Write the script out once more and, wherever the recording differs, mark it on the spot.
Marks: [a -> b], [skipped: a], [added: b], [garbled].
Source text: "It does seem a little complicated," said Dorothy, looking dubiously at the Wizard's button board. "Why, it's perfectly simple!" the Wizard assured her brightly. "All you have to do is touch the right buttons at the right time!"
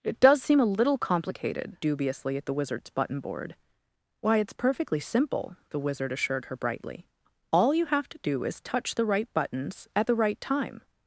"It does seem a little complicated," [skipped: said Dorothy, looking] dubiously at the Wizard's button board. "Why, it's perfectly simple!" the Wizard assured her brightly. "All you have to do is touch the right buttons at the right time!"